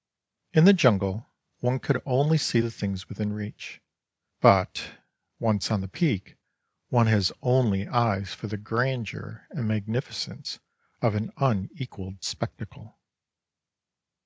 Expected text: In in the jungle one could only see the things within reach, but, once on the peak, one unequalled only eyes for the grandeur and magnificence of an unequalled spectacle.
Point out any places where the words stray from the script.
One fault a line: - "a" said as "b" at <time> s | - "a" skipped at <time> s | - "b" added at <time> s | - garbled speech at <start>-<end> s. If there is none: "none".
- "in" skipped at 0.7 s
- "unequalled" said as "has" at 7.1 s